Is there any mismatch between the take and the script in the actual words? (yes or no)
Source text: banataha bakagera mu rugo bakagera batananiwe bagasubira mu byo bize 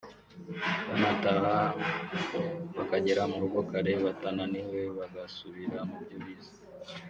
yes